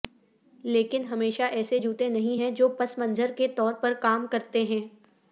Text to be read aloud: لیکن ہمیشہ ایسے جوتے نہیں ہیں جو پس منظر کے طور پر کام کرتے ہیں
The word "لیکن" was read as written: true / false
true